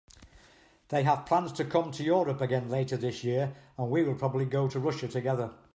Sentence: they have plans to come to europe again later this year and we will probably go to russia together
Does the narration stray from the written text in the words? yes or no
no